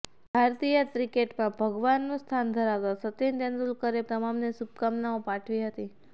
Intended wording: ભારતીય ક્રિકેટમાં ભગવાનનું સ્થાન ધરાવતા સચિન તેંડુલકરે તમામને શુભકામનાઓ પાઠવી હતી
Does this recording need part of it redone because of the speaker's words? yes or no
no